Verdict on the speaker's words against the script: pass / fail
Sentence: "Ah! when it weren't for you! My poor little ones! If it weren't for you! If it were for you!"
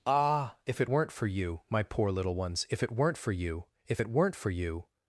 fail